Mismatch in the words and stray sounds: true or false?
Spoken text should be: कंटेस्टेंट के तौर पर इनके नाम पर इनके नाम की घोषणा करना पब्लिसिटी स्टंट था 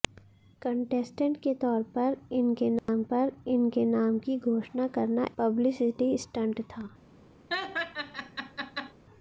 true